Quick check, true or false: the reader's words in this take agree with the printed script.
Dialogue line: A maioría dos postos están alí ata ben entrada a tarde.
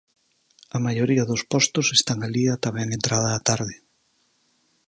true